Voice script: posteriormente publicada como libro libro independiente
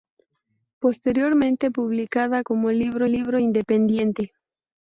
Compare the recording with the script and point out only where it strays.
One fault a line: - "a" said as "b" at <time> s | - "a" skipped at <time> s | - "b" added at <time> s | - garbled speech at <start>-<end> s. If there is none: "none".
none